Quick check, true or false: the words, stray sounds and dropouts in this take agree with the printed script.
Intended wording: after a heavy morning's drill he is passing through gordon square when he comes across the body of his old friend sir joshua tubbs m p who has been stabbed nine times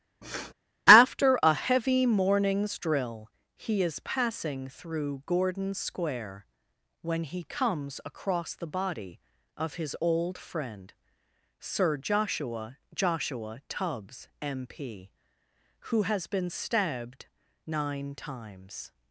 false